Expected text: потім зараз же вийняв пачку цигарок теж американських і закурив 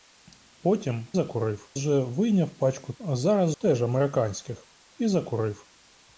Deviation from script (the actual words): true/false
true